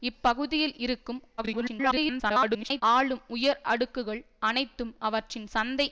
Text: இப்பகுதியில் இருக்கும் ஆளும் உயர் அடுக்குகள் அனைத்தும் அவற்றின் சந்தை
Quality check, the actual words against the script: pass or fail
fail